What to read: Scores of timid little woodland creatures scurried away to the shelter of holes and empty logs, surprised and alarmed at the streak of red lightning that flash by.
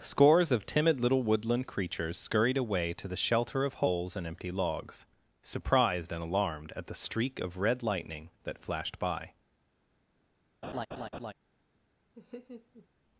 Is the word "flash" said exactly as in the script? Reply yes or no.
no